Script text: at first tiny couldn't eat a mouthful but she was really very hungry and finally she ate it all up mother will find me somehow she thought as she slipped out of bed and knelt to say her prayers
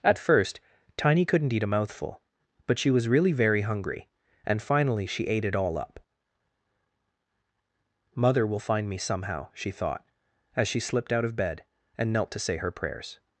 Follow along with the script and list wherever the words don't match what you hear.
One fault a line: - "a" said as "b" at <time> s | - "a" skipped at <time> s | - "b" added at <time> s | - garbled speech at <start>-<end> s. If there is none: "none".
none